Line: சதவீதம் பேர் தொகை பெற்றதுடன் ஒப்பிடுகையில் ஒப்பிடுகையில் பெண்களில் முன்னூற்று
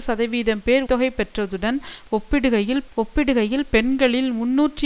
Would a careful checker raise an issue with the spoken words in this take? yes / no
no